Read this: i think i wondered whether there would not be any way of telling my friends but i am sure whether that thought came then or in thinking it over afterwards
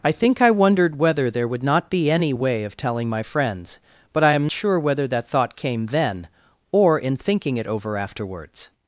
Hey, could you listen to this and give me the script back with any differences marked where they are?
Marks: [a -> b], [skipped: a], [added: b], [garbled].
i think i wondered whether there would not be any way of telling my friends but i am sure whether that thought came then or in thinking it over afterwards